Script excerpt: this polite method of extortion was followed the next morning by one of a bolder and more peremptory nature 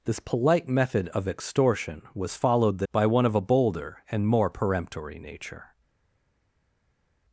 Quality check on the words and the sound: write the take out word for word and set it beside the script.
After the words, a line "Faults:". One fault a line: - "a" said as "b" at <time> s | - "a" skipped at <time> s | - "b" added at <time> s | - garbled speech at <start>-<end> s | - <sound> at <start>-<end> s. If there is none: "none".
this polite method of extortion was followed the by one of a bolder and more peremptory nature
Faults:
- "next morning" skipped at 2.9 s